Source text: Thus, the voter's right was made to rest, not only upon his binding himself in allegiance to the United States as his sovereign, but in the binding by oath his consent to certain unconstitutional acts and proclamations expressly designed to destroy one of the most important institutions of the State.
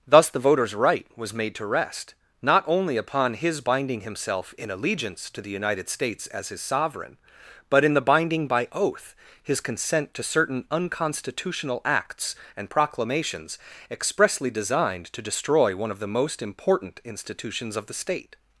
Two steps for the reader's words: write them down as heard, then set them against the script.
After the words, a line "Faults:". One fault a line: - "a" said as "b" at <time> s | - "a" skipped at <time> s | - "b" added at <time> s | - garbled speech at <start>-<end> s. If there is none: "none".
Thus, the voter's right was made to rest, not only upon his binding himself in allegiance to the United States as his sovereign, but in the binding by oath his consent to certain unconstitutional acts and proclamations expressly designed to destroy one of the most important institutions of the State.
Faults:
none